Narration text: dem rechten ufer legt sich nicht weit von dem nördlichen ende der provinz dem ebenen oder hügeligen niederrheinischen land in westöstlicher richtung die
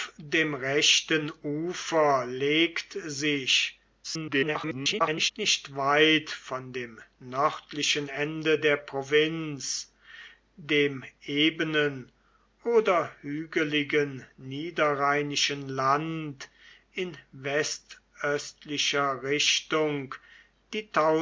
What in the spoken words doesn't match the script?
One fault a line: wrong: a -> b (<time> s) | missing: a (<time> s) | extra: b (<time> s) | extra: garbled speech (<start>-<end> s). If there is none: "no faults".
extra: garbled speech (4.0-5.3 s)